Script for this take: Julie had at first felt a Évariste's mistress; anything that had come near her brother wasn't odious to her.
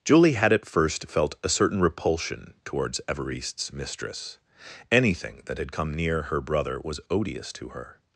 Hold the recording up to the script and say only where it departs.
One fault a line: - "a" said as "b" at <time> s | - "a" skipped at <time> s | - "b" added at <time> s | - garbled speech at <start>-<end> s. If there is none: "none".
- "certain repulsion towards" added at 1.5 s
- "wasn't" said as "was" at 6.8 s